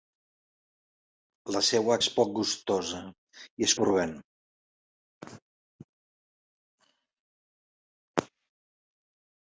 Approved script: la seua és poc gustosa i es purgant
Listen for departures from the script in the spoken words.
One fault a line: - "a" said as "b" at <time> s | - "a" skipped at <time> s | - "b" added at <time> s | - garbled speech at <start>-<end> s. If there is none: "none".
none